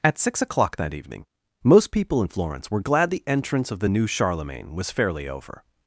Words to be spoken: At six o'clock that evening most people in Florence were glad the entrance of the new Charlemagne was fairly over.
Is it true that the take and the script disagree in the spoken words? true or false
false